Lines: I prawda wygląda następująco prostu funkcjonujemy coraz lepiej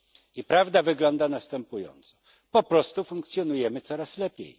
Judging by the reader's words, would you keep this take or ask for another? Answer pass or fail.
fail